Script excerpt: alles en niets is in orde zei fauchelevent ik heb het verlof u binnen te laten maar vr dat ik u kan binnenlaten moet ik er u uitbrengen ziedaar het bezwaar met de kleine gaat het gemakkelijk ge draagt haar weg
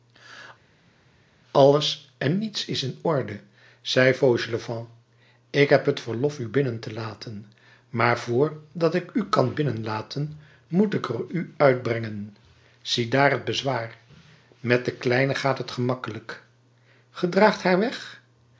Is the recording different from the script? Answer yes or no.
no